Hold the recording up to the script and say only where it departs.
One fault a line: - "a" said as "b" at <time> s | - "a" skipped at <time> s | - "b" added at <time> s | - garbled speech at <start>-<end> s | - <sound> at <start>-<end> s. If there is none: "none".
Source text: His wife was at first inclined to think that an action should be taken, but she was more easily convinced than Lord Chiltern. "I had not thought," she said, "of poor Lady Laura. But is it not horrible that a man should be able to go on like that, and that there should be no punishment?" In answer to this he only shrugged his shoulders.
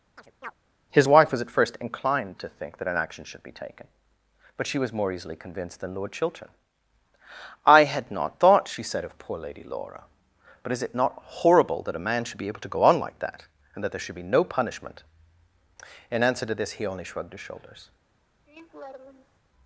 - chirp at 0.2-0.6 s
- laugh at 18.5-19.4 s